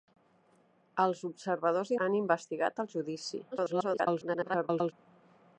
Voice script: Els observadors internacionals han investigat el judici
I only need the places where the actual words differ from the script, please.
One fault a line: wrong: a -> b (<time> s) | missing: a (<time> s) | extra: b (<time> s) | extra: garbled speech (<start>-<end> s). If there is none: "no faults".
missing: internacionals (1.9 s)
extra: garbled speech (3.5-4.9 s)